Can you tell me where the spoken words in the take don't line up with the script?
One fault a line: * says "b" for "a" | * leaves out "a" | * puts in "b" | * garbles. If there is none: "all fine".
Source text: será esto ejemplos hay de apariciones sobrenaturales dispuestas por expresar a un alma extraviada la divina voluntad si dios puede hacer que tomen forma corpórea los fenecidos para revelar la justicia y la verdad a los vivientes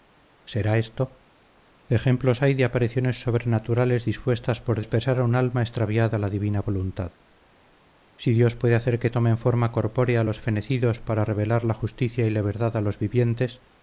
all fine